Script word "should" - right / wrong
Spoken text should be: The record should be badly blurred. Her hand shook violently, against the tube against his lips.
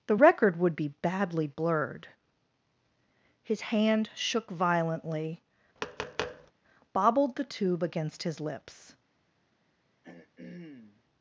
wrong